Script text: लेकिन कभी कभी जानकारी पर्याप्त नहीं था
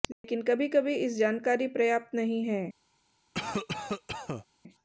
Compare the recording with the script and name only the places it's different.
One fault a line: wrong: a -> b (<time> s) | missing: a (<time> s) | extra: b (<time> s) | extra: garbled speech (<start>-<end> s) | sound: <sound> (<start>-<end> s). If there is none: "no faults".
sound: dropout (0.1-0.2 s)
extra: इस (1.0 s)
wrong: था -> है (2.5 s)
sound: cough (3.3-4.5 s)